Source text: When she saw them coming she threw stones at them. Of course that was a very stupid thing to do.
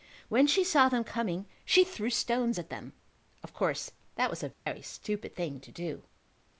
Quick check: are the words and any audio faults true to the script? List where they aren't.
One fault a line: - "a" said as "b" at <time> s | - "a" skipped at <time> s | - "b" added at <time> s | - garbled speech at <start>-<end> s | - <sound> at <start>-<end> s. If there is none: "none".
- dropout at 4.5-4.7 s